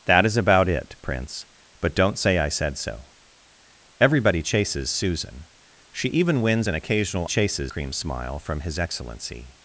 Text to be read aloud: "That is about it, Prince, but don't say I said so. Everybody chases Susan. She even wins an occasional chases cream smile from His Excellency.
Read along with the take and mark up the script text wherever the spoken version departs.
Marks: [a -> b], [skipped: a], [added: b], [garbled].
"That is about it, Prince, but don't say I said so. Everybody chases Susan. She even wins an occasional chases cream smile from His Excellency.